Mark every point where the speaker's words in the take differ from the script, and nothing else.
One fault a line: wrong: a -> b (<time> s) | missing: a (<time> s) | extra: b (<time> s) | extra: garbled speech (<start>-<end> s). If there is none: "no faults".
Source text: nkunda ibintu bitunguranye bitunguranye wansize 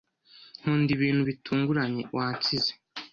missing: bitunguranye (2.0 s)